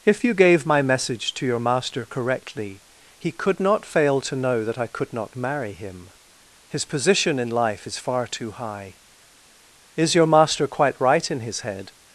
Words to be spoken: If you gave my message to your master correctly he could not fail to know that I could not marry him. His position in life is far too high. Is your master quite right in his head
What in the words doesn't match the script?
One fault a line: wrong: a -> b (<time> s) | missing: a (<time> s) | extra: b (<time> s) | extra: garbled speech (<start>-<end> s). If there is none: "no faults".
no faults